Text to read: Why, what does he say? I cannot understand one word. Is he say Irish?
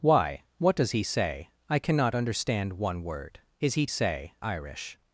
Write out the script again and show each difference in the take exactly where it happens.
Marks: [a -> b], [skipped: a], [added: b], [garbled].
Why, what does he say? I cannot understand one word. Is he say Irish?